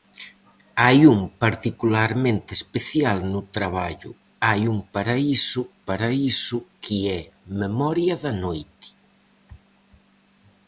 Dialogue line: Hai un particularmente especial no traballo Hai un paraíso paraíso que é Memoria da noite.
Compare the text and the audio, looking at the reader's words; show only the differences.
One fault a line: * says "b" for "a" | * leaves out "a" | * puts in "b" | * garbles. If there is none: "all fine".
all fine